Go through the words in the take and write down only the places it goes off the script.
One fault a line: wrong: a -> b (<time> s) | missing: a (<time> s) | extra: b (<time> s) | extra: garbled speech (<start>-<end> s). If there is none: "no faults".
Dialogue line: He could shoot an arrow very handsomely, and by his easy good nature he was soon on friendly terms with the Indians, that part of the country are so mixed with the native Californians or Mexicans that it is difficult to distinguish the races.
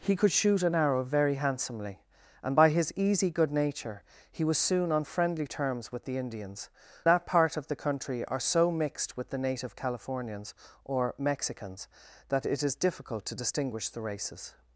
no faults